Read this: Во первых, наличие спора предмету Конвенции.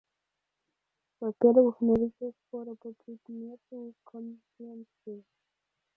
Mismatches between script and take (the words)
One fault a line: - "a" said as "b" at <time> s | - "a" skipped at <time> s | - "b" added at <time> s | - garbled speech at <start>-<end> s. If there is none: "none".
- "по" added at 2.8 s